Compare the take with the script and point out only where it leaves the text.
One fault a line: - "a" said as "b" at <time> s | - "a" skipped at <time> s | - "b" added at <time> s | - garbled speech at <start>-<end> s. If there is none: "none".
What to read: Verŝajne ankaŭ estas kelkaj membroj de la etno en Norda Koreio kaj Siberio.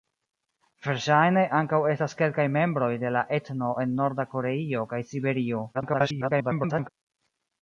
- garbled speech at 5.7-6.9 s